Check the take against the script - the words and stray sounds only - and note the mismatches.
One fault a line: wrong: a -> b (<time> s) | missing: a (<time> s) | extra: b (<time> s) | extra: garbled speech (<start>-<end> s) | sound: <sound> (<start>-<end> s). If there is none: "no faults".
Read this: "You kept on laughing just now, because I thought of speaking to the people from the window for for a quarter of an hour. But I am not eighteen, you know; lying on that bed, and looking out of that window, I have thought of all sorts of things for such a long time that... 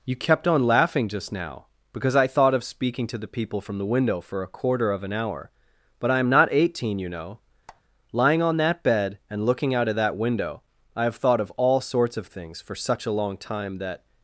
missing: for (4.4 s)
sound: squeak (7.7-7.8 s)